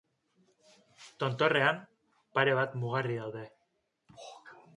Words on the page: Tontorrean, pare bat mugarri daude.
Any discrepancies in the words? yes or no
no